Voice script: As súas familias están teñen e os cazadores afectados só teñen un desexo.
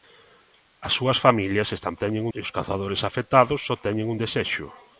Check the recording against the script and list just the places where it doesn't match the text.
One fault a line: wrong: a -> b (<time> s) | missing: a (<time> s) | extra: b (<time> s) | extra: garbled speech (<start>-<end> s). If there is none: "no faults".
no faults